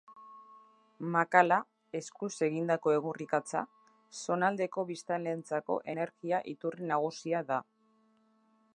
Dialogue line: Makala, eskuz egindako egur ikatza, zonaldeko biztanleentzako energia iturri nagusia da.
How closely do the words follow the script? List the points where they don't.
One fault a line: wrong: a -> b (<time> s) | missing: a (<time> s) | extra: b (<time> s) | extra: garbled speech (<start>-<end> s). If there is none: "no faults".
no faults